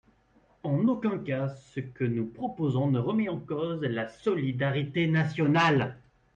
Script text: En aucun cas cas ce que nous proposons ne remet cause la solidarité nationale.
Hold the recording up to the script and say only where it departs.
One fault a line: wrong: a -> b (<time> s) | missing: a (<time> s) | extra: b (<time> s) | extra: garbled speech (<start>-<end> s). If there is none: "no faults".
missing: cas (1.5 s)
extra: en (3.3 s)